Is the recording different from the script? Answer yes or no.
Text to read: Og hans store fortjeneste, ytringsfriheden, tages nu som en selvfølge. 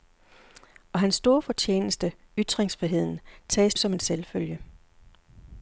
yes